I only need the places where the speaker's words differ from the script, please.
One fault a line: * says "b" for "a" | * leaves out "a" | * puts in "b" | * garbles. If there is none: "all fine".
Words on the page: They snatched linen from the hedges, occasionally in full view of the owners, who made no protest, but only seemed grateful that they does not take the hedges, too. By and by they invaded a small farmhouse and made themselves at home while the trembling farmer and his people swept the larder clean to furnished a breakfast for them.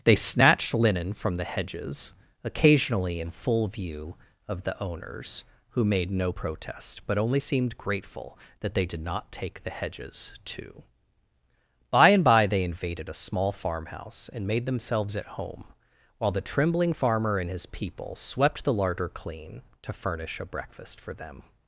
* says "did" for "does"
* says "furnish" for "furnished"